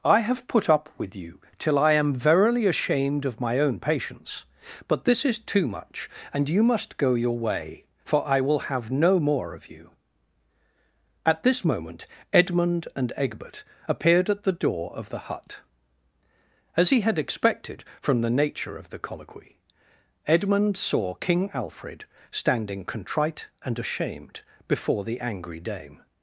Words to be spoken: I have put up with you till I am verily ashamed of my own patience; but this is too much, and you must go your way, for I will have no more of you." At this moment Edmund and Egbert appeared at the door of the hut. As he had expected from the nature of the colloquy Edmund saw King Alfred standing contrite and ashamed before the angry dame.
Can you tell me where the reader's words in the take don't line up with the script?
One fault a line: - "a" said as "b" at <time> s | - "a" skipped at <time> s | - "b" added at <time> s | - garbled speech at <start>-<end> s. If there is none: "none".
none